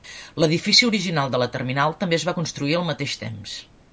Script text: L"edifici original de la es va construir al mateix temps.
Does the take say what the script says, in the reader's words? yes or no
no